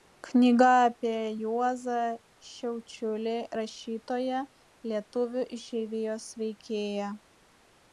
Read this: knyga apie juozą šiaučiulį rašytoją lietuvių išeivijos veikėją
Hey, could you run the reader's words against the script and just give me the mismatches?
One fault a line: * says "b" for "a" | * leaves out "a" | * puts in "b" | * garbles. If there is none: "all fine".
all fine